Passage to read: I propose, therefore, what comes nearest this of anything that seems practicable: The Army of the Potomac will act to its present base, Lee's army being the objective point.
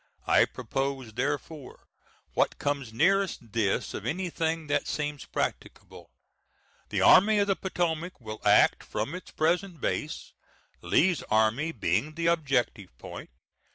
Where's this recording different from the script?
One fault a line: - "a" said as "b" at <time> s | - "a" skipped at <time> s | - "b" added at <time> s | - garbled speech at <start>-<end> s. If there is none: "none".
- "to" said as "from" at 8.8 s